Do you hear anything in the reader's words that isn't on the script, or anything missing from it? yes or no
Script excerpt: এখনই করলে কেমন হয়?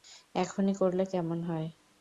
no